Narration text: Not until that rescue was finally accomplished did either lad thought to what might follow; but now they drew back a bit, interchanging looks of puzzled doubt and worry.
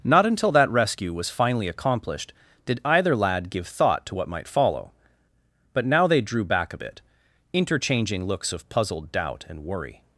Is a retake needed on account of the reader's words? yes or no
yes